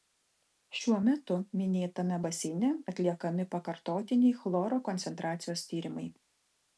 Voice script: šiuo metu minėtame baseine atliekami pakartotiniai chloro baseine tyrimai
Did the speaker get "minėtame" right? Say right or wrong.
right